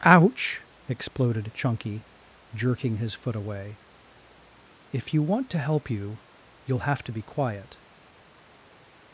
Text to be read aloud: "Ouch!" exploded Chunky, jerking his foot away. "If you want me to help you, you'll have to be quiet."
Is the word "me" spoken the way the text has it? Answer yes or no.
no